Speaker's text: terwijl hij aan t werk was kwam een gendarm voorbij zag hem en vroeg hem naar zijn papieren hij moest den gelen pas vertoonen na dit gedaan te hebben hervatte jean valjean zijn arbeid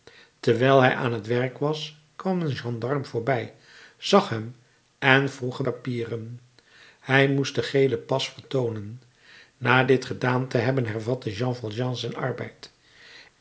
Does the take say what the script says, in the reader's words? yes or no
no